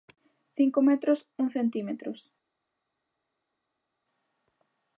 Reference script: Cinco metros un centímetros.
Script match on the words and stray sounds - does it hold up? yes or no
yes